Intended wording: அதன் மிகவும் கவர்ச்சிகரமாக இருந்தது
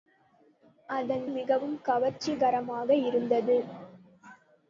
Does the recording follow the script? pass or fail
pass